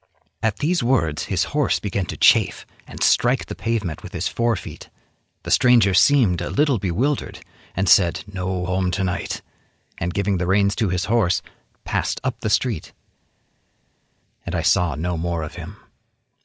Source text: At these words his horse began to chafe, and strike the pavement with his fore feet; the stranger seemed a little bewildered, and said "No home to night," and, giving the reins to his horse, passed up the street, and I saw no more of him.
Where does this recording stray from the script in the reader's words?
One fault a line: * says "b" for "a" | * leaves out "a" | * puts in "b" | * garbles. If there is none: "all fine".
all fine